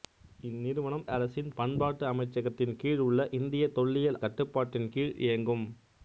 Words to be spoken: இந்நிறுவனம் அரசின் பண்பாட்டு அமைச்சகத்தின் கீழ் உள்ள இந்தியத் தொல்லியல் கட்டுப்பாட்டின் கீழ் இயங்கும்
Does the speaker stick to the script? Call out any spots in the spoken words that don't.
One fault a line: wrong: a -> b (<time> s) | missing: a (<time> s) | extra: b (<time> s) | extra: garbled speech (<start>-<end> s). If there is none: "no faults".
no faults